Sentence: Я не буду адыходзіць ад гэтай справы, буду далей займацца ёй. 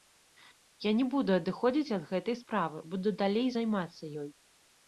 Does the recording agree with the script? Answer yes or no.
yes